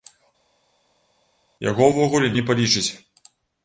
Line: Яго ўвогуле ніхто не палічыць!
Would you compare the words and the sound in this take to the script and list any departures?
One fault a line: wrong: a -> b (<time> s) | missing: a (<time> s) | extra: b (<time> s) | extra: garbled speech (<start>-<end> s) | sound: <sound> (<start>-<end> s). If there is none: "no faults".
missing: ніхто (2.3 s)